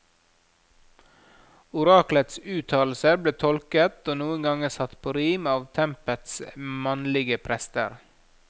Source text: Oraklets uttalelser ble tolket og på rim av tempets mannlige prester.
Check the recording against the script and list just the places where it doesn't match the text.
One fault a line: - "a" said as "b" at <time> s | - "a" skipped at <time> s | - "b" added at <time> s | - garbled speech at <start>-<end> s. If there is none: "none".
- "noen ganger satt" added at 4.2 s